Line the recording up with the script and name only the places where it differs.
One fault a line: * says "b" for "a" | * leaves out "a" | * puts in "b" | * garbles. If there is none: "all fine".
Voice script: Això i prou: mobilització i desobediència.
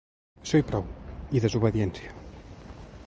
* leaves out "mobilització"